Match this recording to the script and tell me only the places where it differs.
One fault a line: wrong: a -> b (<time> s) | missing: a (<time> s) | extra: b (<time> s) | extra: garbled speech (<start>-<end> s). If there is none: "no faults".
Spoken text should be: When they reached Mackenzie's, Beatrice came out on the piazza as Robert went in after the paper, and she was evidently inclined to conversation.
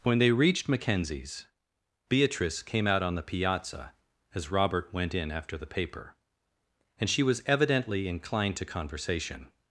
no faults